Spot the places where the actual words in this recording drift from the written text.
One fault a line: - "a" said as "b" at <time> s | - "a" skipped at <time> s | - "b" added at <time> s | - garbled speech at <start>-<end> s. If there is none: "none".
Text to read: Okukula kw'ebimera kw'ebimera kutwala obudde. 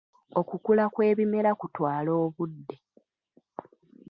- "kw'ebimera" skipped at 1.5 s